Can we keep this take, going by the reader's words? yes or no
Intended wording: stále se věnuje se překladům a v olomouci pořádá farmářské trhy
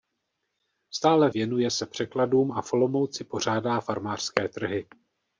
no